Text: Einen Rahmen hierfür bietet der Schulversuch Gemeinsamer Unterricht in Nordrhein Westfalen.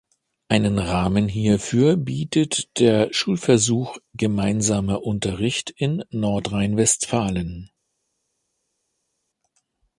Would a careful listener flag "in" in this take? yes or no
no